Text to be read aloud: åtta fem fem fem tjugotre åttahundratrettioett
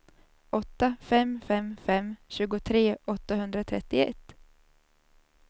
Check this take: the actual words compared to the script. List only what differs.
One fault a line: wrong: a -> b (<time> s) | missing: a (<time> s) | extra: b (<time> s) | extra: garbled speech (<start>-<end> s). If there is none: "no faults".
no faults